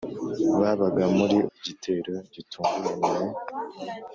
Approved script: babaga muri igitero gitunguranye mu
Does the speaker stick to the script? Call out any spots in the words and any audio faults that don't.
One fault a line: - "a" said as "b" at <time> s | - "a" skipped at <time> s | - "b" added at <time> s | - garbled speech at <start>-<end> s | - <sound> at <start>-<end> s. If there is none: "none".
none